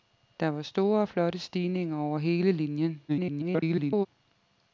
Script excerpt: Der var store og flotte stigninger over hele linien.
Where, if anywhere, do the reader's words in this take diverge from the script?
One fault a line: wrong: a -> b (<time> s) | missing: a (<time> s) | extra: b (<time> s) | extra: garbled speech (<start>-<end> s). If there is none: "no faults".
extra: garbled speech (3.1-4.1 s)